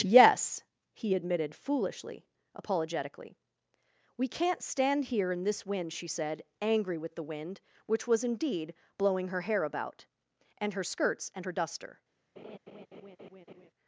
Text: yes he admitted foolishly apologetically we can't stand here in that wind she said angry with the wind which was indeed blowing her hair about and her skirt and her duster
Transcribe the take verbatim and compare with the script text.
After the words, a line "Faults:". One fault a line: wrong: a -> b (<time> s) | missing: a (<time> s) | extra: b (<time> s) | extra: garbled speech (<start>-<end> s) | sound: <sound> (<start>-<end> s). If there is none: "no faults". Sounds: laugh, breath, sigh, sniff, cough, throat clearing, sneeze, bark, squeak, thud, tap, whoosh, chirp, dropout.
yes he admitted foolishly apologetically we can't stand here in this wind she said angry with the wind which was indeed blowing her hair about and her skirts and her duster
Faults:
wrong: that -> this (5.4 s)
wrong: skirt -> skirts (10.8 s)
sound: laugh (12.4-13.7 s)